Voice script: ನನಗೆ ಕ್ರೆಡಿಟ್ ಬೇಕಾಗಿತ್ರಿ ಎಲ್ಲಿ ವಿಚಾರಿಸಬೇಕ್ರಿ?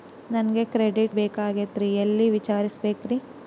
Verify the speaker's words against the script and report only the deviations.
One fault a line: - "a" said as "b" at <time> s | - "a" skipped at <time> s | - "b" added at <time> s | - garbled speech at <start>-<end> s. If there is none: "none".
none